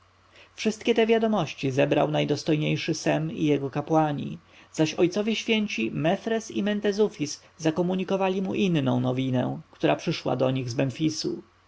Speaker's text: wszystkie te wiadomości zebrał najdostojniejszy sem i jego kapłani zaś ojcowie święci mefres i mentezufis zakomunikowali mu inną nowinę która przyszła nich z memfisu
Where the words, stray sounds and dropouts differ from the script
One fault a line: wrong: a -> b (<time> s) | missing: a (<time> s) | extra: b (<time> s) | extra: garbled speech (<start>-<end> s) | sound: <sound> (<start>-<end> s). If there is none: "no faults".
extra: do (10.3 s)